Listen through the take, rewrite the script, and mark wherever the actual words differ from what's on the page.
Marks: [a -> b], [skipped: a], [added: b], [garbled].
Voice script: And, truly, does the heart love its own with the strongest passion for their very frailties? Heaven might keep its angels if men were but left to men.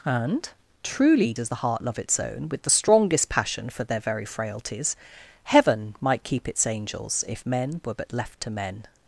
And, truly, does the heart love its own with the strongest passion for their very frailties? Heaven might keep its angels if men were but left to men.